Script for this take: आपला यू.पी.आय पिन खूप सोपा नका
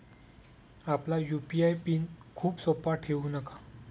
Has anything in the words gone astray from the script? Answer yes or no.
yes